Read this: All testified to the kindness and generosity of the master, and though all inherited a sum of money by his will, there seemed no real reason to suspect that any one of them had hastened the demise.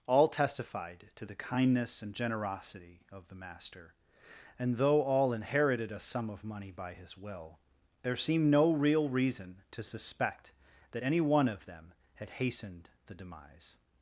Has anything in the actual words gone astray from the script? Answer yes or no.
no